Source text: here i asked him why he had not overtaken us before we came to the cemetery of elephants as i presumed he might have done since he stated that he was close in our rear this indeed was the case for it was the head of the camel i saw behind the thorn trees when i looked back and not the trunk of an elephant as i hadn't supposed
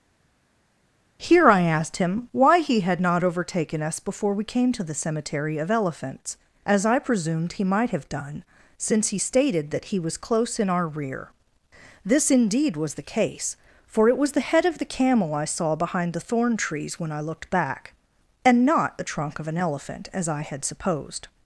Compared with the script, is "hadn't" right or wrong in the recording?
wrong